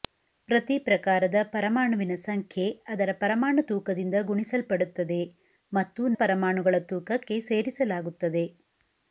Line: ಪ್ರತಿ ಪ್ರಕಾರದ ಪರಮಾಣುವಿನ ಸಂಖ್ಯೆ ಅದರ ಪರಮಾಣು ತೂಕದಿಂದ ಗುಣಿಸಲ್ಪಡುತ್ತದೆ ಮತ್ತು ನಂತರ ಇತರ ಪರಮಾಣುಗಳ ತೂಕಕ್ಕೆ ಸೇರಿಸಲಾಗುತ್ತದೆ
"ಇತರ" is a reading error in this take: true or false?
true